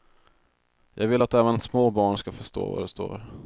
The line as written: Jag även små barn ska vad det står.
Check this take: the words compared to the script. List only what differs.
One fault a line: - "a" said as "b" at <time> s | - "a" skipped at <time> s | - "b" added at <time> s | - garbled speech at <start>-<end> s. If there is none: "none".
- "vill att" added at 1.1 s
- "förstå" added at 2.3 s